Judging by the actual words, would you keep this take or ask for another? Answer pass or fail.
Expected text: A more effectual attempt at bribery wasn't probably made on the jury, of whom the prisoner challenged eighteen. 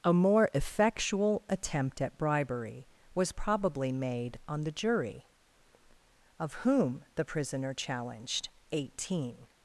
fail